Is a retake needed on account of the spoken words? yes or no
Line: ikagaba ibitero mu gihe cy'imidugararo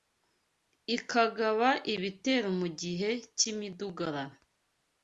no